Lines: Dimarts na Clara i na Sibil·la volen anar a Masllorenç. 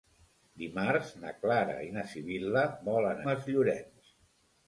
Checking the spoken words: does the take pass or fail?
fail